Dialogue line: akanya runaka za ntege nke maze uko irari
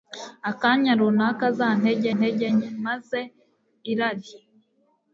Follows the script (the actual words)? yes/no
no